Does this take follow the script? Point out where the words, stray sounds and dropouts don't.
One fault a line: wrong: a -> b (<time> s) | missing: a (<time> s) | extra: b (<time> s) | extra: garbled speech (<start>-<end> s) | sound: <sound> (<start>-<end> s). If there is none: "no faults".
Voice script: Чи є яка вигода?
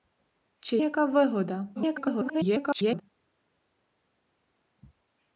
missing: є (0.8 s)
extra: garbled speech (1.8-3.0 s)